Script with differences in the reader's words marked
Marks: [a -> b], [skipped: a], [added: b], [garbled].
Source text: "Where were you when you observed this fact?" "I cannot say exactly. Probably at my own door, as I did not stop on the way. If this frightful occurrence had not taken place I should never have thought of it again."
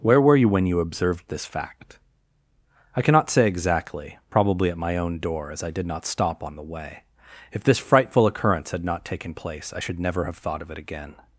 "Where were you when you observed this fact?" "I cannot say exactly. Probably at my own door, as I did not stop on the way. If this frightful occurrence had not taken place I should never have thought of it again."